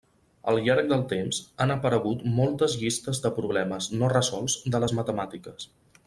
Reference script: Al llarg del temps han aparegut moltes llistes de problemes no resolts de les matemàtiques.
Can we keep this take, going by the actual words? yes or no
yes